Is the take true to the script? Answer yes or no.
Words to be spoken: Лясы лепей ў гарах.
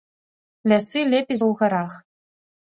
yes